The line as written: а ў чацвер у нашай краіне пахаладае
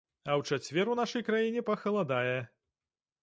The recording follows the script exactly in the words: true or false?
true